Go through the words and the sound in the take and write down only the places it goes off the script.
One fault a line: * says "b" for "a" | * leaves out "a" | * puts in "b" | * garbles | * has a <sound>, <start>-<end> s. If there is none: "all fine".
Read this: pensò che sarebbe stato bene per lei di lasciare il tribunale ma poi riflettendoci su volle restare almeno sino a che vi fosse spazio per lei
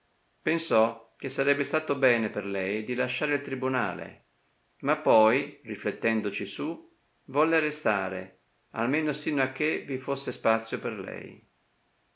all fine